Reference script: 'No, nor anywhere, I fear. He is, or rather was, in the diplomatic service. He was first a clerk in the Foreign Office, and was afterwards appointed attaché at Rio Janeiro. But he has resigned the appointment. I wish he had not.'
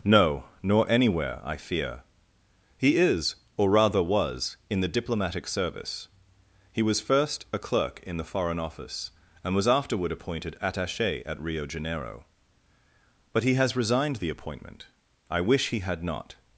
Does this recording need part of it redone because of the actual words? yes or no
yes